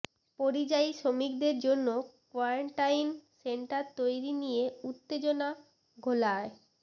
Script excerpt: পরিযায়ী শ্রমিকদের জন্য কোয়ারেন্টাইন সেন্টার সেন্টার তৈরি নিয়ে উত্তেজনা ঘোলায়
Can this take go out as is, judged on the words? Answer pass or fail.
fail